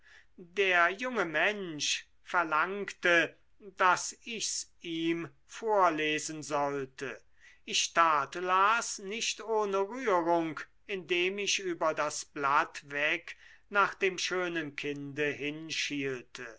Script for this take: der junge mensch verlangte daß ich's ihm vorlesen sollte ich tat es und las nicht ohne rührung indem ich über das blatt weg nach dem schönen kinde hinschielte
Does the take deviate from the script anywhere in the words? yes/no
yes